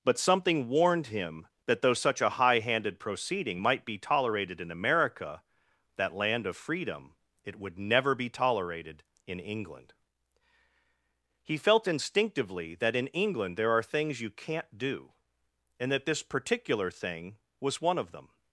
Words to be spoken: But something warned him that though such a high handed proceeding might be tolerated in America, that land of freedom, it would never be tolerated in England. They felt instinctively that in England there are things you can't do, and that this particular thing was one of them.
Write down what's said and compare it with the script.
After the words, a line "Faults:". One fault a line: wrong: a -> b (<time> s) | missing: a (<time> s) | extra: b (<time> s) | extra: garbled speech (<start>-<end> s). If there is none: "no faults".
But something warned him that though such a high handed proceeding might be tolerated in America, that land of freedom, it would never be tolerated in England. He felt instinctively that in England there are things you can't do, and that this particular thing was one of them.
Faults:
wrong: They -> He (11.4 s)